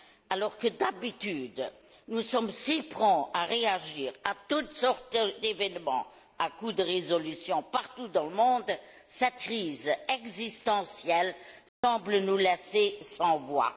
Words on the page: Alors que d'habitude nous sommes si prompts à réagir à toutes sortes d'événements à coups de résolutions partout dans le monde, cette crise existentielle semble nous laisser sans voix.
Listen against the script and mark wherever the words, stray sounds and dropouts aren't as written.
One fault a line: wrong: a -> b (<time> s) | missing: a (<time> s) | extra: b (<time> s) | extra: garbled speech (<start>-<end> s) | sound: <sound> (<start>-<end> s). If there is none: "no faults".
sound: dropout (11.7-11.8 s)